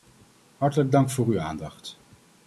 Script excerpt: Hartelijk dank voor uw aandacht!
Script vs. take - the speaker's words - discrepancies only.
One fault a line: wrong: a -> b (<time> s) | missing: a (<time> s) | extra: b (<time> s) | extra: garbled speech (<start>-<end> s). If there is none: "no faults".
no faults